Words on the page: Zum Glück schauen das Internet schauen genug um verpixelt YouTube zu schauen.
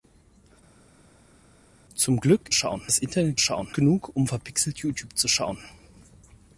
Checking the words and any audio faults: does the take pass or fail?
pass